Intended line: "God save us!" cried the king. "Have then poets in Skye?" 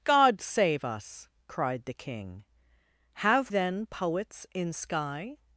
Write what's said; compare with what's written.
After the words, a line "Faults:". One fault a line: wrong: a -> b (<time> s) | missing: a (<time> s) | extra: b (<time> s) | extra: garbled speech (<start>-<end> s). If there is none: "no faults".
"God save us!" cried the king. "Have then poets in Skye?"
Faults:
no faults